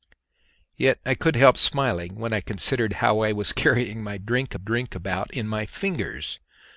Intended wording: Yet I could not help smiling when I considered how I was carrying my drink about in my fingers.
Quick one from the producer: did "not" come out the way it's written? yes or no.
no